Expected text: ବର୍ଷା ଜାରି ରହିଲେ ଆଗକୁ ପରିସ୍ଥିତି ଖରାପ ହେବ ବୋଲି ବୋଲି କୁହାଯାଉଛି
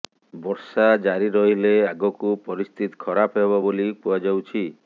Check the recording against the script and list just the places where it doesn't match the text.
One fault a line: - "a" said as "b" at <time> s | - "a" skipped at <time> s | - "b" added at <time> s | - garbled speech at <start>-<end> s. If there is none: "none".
- "ବୋଲି" skipped at 3.9 s